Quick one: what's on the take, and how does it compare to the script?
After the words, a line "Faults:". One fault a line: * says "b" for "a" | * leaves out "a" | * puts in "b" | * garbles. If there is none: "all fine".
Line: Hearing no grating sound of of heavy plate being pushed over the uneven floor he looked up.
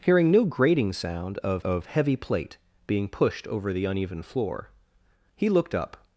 Hearing no grating sound of of heavy plate being pushed over the uneven floor he looked up.
Faults:
all fine